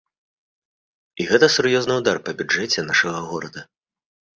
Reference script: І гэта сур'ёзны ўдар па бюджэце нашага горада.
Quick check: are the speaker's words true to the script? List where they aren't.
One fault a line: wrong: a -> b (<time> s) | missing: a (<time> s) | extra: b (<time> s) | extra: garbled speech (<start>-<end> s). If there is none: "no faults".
no faults